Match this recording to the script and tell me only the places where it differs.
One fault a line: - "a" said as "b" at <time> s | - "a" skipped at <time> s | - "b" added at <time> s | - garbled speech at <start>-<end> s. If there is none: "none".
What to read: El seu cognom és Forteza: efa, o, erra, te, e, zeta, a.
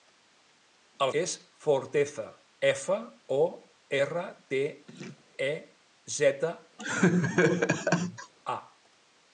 - "seu cognom" skipped at 1.1 s